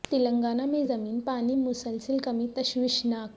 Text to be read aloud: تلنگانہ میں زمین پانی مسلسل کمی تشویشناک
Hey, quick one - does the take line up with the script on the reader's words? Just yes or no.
yes